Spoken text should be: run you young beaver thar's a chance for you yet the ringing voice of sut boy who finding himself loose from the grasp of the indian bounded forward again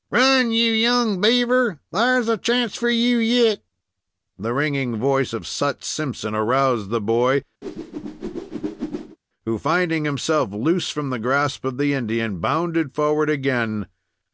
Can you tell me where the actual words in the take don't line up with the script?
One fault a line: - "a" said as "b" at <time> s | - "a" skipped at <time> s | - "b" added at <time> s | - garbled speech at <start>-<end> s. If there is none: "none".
- "simpson aroused the" added at 5.8 s